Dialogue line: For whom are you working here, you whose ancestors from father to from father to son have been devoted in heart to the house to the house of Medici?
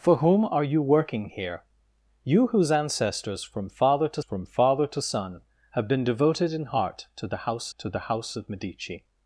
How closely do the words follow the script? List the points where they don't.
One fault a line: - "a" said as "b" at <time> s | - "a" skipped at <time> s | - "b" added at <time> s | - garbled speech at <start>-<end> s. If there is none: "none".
none